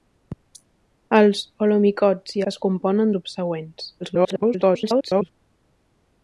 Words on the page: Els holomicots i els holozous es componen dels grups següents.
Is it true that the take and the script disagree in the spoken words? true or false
true